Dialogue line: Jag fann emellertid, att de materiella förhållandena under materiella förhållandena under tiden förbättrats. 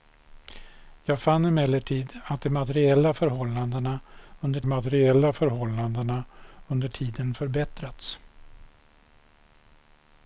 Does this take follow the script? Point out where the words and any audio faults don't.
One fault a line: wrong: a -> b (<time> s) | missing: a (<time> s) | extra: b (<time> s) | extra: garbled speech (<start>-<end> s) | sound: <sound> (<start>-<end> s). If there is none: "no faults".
no faults